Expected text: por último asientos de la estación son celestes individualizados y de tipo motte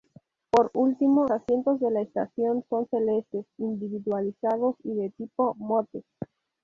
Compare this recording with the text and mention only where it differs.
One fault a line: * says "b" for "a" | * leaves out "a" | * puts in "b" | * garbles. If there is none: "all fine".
all fine